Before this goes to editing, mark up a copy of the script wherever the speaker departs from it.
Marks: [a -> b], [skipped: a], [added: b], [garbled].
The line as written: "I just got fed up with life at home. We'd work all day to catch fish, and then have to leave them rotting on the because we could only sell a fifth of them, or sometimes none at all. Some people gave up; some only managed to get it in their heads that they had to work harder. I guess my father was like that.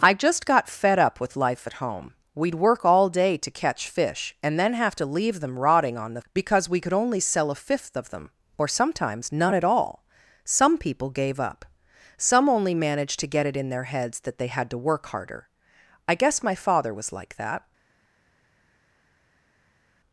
"I just got fed up with life at home. We'd work all day to catch fish, and then have to leave them rotting on the because we could only sell a fifth of them, or sometimes none at all. Some people gave up; some only managed to get it in their heads that they had to work harder. I guess my father was like that.